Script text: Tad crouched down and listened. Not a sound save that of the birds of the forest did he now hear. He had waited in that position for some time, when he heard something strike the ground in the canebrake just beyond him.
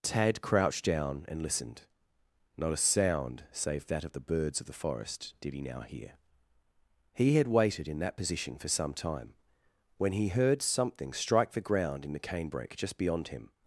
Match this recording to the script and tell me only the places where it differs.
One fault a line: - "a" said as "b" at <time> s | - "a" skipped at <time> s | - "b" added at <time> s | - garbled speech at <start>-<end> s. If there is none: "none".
none